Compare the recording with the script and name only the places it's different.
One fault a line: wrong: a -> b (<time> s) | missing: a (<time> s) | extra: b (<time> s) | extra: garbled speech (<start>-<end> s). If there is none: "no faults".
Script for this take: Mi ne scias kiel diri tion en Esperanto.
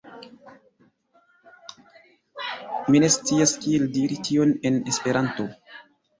no faults